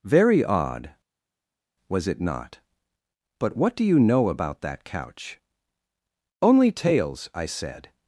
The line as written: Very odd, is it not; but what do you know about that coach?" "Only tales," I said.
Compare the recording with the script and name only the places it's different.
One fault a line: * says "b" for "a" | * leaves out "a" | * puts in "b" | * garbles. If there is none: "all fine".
* says "was" for "is"
* says "couch" for "coach"